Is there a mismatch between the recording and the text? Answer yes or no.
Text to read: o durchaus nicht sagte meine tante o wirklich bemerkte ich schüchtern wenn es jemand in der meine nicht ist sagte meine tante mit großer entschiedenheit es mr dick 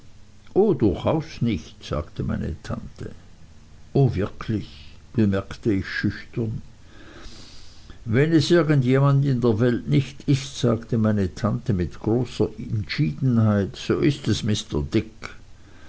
yes